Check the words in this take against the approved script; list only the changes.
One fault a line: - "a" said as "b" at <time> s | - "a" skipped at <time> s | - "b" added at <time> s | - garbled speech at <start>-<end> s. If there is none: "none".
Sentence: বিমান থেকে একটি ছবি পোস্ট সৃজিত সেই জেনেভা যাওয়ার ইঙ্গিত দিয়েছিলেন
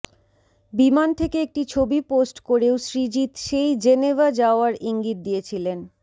- "করেও" added at 2.5 s